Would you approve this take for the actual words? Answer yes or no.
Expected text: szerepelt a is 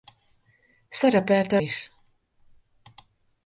yes